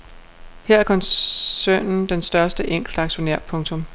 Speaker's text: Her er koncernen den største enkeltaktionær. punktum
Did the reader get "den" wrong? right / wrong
right